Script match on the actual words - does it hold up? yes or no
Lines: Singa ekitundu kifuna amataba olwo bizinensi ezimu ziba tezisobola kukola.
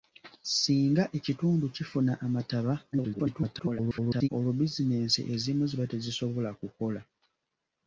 no